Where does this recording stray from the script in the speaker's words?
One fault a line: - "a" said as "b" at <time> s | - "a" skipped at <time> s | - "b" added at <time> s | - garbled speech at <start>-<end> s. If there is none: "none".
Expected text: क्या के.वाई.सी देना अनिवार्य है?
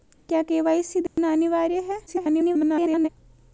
- garbled speech at 2.1-3.1 s